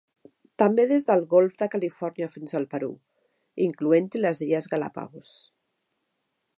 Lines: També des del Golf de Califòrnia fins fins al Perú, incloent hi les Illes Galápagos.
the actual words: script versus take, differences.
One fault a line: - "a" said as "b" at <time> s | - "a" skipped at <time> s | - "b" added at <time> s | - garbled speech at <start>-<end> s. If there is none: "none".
- "fins" skipped at 2.6 s